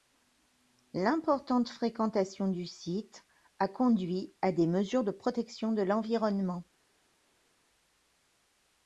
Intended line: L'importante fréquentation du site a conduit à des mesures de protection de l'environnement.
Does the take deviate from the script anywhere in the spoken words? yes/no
no